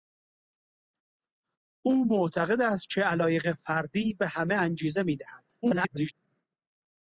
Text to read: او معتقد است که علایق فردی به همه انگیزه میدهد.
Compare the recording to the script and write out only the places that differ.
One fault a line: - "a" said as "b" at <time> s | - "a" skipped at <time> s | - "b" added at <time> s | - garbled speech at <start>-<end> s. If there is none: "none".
- garbled speech at 5.6-6.1 s